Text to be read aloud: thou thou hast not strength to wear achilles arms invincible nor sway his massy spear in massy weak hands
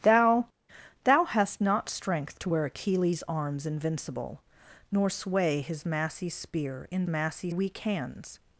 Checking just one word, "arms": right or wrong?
right